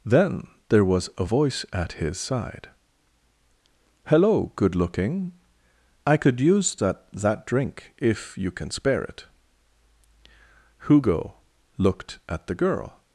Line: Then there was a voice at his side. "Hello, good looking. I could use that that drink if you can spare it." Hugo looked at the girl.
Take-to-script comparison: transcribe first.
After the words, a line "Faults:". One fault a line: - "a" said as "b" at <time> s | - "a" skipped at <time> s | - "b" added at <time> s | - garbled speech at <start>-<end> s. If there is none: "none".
Then there was a voice at his side. "Hello, good looking. I could use that that drink if you can spare it." Hugo looked at the girl.
Faults:
none